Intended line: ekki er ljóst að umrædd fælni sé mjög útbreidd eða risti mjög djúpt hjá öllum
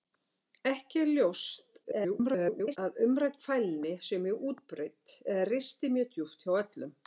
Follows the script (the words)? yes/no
no